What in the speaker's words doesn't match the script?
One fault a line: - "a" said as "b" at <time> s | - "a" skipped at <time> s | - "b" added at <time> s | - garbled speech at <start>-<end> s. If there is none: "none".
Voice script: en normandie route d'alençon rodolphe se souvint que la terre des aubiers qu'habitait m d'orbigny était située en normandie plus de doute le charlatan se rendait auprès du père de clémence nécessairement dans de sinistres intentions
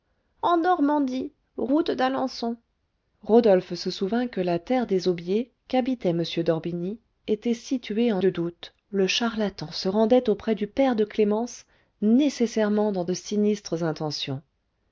- "normandie plus" skipped at 8.2 s